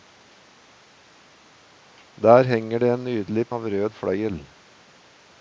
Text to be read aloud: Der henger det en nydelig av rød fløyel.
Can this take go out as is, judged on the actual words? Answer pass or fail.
pass